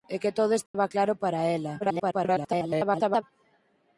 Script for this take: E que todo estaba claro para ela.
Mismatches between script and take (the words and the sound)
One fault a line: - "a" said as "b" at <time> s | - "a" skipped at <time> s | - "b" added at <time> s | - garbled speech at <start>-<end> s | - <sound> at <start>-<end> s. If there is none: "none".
- dropout at 0.7-0.7 s
- garbled speech at 1.8-3.2 s